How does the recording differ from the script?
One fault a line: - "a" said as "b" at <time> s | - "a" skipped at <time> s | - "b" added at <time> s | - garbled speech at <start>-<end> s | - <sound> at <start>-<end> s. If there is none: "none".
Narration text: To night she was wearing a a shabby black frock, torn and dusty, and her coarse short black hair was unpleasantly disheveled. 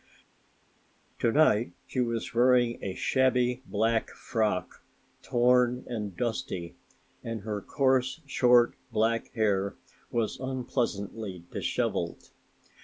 - "a" skipped at 2.9 s